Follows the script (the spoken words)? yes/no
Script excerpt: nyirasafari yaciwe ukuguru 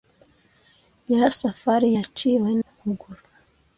yes